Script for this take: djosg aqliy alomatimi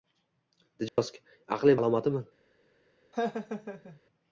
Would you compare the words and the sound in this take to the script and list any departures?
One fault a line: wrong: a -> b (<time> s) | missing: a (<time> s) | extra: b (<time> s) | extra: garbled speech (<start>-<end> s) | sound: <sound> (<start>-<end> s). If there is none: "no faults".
sound: dropout (0.9-1.0 s)
sound: laugh (3.1-4.0 s)